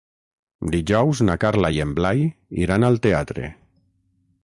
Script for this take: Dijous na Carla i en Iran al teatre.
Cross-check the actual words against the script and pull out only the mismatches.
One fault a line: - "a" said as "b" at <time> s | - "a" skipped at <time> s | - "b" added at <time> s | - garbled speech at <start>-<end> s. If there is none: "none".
- "Blai" added at 2.0 s